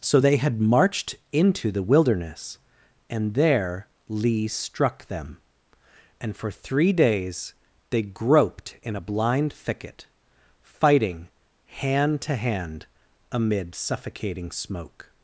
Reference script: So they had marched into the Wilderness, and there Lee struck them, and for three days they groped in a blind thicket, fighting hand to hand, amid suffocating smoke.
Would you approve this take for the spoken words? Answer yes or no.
yes